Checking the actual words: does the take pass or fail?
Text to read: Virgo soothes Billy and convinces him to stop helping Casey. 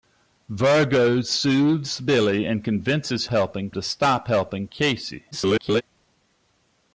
fail